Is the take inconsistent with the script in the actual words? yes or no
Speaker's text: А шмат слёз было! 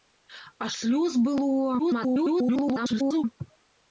yes